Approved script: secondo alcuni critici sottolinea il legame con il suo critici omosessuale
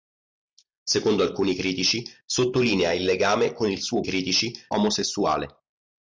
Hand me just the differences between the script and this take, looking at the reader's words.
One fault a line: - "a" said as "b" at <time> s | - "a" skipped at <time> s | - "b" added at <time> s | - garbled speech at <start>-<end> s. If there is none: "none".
none